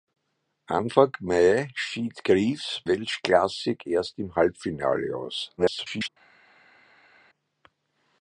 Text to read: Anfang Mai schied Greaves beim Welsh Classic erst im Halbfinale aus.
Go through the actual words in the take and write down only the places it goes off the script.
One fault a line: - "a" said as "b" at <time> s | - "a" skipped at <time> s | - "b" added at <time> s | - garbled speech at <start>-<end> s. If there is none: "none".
- "beim" skipped at 2.8 s
- garbled speech at 5.6-6.1 s